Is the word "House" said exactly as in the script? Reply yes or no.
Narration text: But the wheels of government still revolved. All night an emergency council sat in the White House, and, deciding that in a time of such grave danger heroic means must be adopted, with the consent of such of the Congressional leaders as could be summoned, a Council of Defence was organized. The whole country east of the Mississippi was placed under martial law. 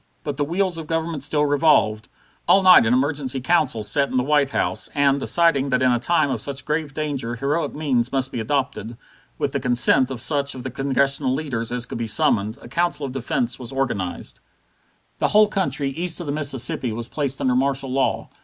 yes